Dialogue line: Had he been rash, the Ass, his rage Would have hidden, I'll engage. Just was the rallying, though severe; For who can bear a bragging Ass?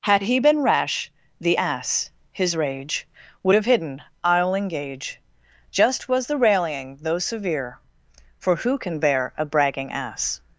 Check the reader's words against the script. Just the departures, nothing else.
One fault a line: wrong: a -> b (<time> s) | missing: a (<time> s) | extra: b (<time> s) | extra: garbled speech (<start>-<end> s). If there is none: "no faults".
no faults